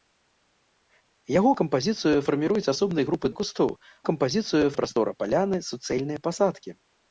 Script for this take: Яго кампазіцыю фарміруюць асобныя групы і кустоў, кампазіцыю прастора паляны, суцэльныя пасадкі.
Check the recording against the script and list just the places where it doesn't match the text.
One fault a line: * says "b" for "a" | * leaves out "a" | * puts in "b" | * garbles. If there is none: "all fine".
all fine